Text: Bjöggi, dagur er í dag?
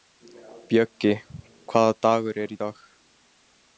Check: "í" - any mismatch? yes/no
no